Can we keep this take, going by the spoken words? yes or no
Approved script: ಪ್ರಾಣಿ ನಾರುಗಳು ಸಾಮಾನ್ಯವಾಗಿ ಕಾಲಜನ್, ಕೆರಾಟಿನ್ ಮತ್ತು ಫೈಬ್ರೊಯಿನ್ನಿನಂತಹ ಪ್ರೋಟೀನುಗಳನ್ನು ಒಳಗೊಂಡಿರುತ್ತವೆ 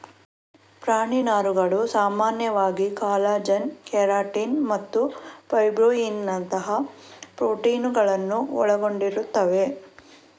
yes